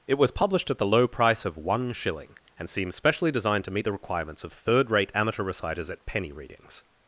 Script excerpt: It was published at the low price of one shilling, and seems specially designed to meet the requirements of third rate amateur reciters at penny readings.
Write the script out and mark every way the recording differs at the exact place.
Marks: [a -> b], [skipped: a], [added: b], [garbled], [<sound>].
It was published at the low price of one shilling, and seems specially designed to meet the requirements of third rate amateur reciters at penny readings.